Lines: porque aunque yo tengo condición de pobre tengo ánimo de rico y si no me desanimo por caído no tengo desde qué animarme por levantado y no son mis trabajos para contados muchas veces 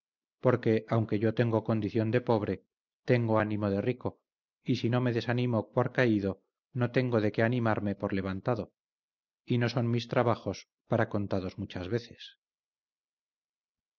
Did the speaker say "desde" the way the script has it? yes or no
no